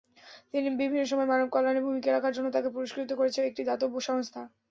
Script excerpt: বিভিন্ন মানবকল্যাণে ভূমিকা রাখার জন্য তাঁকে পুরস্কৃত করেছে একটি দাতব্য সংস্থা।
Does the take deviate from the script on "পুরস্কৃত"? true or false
false